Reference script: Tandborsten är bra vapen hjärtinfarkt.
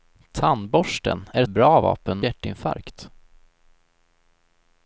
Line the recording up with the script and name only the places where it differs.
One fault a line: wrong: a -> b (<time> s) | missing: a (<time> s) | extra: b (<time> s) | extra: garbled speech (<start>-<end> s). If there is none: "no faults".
no faults